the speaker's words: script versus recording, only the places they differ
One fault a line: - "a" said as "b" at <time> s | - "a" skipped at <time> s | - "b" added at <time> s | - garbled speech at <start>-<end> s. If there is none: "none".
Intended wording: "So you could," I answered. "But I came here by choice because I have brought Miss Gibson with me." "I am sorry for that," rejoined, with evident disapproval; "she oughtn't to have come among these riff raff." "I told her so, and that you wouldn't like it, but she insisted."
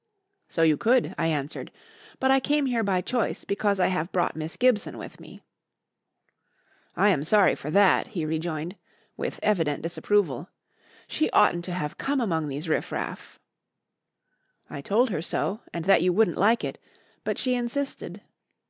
- "he" added at 8.1 s